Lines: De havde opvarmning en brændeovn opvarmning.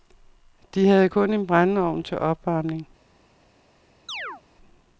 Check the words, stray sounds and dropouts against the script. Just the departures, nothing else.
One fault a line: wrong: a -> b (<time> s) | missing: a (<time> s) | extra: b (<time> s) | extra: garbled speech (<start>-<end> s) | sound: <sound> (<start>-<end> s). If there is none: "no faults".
wrong: opvarmning -> kun (1.1 s)
extra: til (2.0 s)
sound: chirp (4.1-4.4 s)